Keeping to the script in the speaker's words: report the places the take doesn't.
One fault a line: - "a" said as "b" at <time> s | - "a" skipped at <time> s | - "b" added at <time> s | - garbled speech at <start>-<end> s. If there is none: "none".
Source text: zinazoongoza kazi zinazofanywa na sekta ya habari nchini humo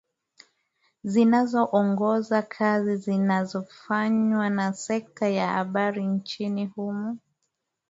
none